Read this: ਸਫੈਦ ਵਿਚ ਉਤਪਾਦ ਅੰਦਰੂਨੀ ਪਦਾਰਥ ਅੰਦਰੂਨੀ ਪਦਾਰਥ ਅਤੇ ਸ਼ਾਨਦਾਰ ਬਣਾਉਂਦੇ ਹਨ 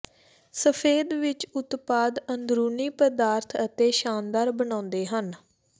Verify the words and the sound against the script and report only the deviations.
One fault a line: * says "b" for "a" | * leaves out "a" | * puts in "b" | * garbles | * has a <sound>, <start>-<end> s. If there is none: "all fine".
* leaves out "ਅੰਦਰੂਨੀ ਪਦਾਰਥ"